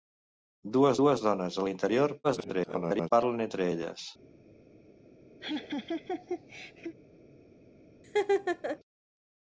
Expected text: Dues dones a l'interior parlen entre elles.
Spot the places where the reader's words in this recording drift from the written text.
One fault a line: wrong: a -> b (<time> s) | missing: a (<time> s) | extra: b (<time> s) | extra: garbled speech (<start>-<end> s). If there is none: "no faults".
extra: dues (1.0 s)
extra: garbled speech (2.2-3.1 s)